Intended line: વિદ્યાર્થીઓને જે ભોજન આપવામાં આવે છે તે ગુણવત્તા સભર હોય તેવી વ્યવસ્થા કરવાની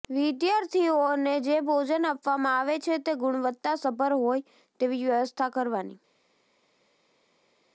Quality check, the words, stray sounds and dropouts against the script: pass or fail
pass